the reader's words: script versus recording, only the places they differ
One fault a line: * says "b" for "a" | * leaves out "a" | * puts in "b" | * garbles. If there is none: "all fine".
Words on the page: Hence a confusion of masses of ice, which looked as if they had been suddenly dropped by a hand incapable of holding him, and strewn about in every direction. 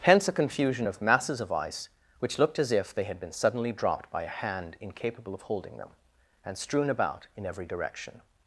* says "them" for "him"